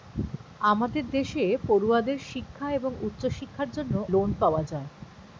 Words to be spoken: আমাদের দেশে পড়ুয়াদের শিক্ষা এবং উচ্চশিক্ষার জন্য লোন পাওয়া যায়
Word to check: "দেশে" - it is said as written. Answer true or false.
true